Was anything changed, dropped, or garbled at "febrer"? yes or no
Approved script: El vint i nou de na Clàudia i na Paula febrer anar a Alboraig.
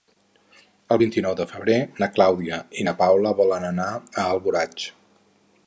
yes